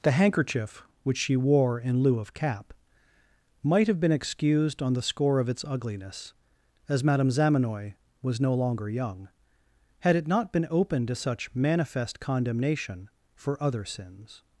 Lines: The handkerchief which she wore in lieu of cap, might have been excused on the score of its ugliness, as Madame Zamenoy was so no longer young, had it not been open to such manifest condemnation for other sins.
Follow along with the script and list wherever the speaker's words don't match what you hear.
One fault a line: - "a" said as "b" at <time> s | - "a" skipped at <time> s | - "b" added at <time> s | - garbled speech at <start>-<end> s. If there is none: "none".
- "so" skipped at 8.4 s